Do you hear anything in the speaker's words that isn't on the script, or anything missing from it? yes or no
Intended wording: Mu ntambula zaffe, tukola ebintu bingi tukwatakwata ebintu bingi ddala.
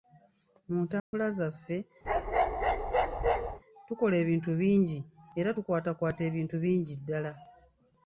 yes